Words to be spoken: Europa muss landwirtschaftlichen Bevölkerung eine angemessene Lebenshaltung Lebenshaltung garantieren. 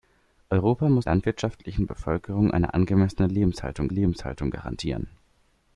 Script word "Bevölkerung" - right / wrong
right